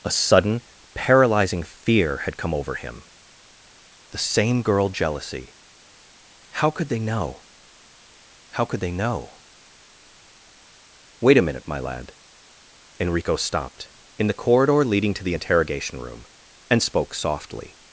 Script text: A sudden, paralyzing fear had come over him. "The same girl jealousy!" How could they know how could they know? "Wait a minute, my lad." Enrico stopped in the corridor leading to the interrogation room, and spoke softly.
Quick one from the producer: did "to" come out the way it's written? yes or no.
yes